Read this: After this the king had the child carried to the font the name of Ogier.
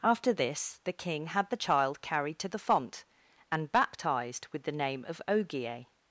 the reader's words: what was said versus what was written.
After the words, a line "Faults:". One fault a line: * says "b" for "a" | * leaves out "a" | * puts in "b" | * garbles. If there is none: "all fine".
After this the king had the child carried to the font and baptized with the name of Ogier.
Faults:
* puts in "and baptized with"